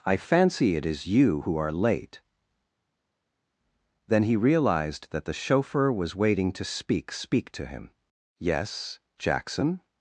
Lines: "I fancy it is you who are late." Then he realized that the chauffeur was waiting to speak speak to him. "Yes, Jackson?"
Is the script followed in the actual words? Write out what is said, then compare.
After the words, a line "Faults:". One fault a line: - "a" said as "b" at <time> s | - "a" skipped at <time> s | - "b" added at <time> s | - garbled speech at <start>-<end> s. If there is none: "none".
"I fancy it is you who are late." Then he realized that the chauffeur was waiting to speak speak to him. "Yes, Jackson?"
Faults:
none